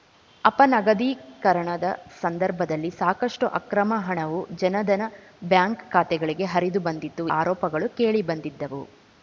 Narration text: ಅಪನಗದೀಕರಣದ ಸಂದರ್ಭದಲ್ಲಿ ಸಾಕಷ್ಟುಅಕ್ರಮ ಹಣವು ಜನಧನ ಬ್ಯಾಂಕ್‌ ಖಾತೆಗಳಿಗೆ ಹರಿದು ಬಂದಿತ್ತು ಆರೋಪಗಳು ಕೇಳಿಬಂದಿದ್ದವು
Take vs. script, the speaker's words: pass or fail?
pass